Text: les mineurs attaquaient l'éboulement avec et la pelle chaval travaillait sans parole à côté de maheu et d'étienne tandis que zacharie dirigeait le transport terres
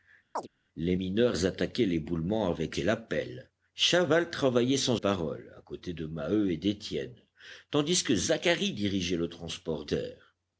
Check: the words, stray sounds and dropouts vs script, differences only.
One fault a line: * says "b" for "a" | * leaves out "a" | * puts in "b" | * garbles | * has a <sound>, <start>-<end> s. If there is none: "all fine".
* has a chirp, 0.4-0.5 s